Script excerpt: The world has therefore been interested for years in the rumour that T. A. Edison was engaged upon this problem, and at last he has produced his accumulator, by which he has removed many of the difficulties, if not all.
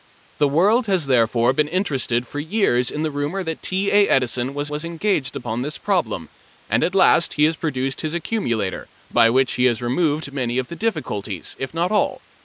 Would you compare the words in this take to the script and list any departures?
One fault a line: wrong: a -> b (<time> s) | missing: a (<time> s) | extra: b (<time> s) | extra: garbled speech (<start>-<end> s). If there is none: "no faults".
extra: was (4.7 s)